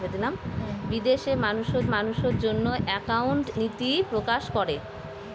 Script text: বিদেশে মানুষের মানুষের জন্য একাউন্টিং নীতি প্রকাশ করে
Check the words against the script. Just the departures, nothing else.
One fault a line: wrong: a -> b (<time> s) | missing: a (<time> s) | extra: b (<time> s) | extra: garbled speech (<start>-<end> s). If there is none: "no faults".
no faults